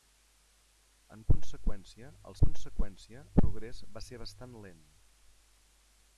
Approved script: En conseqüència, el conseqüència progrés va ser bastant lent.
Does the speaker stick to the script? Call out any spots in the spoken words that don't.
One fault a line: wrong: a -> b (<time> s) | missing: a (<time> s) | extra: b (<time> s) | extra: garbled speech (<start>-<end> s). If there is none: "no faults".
no faults